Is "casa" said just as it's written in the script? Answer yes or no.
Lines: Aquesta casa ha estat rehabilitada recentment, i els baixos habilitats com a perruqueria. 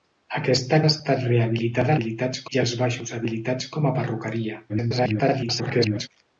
no